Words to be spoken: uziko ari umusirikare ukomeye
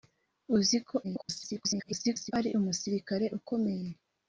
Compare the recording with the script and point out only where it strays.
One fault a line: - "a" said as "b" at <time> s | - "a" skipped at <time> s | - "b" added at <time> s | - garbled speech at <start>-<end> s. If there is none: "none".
- garbled speech at 1.0-2.3 s